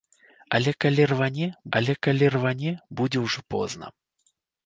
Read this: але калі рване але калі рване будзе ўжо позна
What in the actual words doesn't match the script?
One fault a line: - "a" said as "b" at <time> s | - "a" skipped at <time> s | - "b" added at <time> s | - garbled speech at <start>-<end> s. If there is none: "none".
none